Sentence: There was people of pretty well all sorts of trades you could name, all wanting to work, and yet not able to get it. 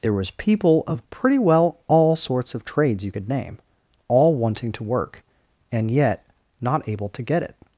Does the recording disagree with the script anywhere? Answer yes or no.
no